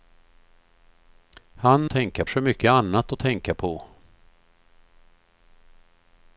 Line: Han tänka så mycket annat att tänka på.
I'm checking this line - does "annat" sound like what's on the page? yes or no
yes